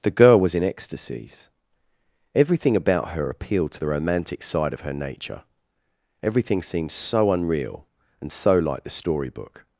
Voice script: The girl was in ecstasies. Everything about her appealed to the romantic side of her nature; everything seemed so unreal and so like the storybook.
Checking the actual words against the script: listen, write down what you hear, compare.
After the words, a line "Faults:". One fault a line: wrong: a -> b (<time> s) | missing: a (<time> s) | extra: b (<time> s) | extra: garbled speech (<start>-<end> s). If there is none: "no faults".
The girl was in ecstasies. Everything about her appealed to the romantic side of her nature; everything seemed so unreal and so like the storybook.
Faults:
no faults